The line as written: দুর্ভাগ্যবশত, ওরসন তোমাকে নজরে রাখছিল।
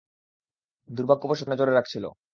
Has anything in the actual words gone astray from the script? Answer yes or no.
yes